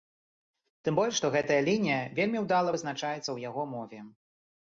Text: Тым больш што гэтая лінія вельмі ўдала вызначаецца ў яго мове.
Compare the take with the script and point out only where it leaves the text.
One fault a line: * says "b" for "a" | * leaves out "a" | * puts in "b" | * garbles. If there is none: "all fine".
all fine